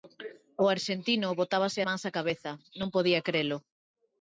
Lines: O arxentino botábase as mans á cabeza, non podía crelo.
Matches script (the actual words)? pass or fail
fail